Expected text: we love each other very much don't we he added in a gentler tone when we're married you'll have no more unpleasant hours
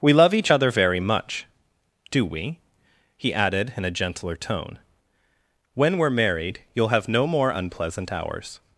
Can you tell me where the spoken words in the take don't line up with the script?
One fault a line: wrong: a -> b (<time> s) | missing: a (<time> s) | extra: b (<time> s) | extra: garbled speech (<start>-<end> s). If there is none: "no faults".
wrong: don't -> do (2.1 s)